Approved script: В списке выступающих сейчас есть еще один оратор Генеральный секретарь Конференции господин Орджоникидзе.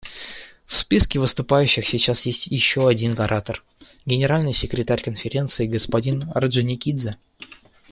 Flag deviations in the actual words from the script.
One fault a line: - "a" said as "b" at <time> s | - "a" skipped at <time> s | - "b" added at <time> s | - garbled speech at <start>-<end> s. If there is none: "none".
none